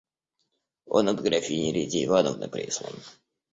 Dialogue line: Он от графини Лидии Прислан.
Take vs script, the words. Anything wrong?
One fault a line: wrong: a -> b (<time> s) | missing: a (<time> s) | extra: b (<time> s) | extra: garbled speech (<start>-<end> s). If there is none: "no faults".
extra: Ивановны (2.0 s)